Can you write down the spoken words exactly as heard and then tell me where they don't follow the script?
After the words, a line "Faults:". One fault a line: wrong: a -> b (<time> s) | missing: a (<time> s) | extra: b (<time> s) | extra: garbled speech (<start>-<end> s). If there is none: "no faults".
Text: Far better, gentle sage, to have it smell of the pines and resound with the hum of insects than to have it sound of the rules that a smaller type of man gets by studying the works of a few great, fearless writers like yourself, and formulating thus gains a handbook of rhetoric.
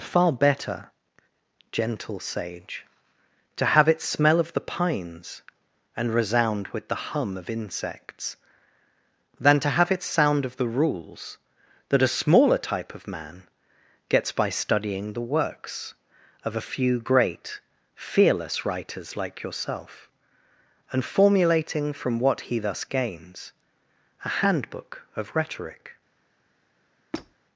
Far better, gentle sage, to have it smell of the pines and resound with the hum of insects than to have it sound of the rules that a smaller type of man gets by studying the works of a few great, fearless writers like yourself, and formulating from what he thus gains a handbook of rhetoric.
Faults:
extra: from what he (21.9 s)